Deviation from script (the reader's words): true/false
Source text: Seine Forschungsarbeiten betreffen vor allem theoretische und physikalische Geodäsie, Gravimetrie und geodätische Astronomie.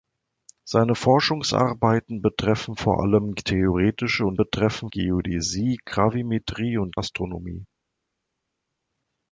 true